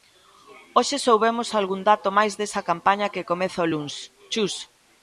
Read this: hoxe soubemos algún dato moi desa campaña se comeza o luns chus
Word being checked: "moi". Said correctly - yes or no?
no